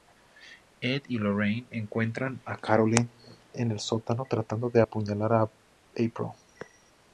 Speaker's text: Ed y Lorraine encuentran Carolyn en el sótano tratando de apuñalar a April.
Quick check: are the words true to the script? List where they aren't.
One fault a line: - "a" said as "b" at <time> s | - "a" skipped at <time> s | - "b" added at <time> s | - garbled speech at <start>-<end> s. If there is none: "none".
- "a" added at 2.5 s